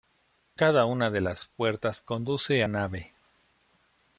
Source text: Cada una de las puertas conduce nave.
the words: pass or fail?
pass